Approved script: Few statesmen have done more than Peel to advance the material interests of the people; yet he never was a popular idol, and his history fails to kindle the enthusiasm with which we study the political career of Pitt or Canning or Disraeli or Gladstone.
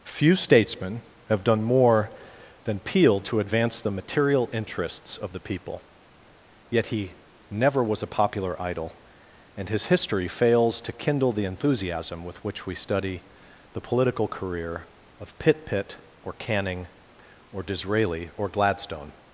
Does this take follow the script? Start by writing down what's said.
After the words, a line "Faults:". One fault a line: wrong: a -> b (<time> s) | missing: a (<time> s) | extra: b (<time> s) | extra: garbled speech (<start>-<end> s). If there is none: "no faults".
Few statesmen have done more than Peel to advance the material interests of the people; yet he never was a popular idol, and his history fails to kindle the enthusiasm with which we study the political career of Pitt Pitt or Canning or Disraeli or Gladstone.
Faults:
extra: Pitt (15.7 s)